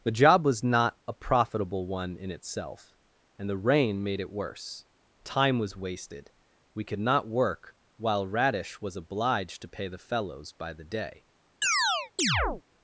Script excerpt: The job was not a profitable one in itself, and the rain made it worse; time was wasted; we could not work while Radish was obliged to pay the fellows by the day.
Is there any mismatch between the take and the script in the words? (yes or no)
no